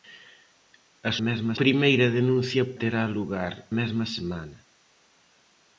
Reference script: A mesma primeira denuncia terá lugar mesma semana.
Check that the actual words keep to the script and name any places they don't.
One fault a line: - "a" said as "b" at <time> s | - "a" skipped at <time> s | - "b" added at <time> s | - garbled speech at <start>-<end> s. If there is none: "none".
none